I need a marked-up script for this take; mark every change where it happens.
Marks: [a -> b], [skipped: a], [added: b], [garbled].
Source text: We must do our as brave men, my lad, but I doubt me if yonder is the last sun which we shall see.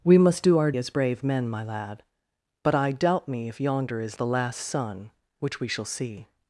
We must do our as brave men, my lad, but I doubt me if yonder is the last sun which we shall see.